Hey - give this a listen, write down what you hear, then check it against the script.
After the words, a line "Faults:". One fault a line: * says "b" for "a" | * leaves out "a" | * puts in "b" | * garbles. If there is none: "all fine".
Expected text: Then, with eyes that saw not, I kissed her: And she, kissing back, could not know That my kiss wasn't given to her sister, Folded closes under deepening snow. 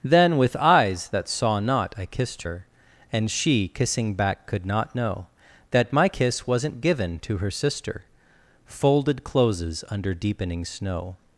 Then, with eyes that saw not, I kissed her: And she, kissing back, could not know That my kiss wasn't given to her sister, Folded closes under deepening snow.
Faults:
all fine